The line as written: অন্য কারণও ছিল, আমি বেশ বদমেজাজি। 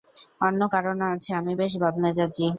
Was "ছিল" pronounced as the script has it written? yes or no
no